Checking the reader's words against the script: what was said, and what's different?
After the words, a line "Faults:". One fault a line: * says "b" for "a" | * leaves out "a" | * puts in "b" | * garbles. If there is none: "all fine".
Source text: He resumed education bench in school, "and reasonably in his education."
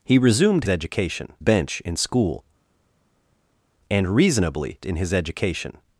He resumed education bench in school, "and reasonably in his education."
Faults:
all fine